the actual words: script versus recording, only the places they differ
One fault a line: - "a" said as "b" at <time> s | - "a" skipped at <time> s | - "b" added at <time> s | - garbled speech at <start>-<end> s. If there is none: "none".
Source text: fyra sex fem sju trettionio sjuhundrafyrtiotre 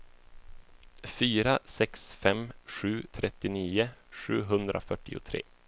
none